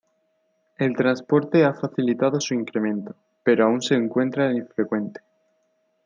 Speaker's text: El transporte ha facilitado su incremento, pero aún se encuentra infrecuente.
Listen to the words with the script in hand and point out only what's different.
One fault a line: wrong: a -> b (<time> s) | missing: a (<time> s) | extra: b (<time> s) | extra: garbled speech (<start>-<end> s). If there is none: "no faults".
no faults